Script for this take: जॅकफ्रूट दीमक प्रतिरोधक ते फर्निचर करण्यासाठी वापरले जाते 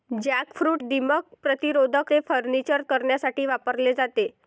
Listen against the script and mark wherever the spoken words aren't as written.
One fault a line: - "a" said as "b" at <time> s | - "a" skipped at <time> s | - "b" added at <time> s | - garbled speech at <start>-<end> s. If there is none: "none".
none